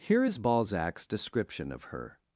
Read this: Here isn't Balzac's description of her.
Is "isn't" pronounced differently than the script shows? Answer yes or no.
yes